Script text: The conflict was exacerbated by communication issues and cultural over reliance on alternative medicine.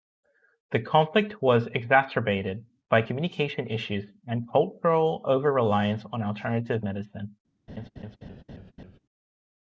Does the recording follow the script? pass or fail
pass